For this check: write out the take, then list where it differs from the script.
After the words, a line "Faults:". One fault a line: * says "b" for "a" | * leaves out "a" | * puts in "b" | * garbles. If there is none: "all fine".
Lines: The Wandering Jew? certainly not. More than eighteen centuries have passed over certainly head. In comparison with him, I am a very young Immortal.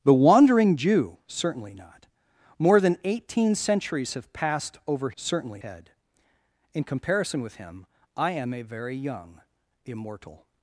The Wandering Jew? certainly not. More than eighteen centuries have passed over certainly head. In comparison with him, I am a very young Immortal.
Faults:
all fine